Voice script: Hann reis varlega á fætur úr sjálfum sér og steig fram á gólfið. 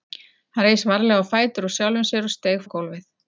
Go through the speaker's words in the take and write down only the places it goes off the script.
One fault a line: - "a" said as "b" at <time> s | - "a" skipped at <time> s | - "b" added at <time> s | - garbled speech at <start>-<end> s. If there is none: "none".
- "fram" skipped at 2.6 s